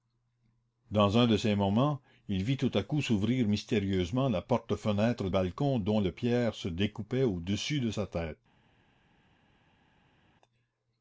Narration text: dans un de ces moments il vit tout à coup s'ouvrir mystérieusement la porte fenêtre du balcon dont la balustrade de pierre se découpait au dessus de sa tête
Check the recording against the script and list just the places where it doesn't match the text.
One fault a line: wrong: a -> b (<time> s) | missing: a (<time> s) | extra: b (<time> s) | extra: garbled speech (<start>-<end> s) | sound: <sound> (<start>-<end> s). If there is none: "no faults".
missing: du (5.3 s)
missing: la balustrade (6.0 s)